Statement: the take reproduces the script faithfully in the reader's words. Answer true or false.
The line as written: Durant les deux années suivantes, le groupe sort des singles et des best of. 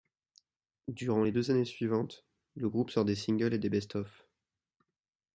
true